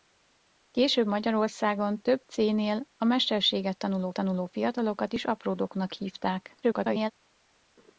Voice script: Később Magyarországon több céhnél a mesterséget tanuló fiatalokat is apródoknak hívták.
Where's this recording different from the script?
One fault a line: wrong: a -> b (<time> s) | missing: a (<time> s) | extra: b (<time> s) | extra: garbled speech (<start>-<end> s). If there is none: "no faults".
extra: tanuló (4.1 s)
extra: garbled speech (6.6-7.1 s)